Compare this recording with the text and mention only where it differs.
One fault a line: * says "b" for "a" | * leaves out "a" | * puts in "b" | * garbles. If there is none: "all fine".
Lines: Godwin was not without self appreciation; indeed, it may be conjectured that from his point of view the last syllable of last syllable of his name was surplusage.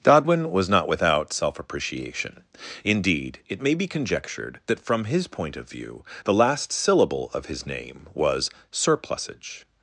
* leaves out "last syllable of"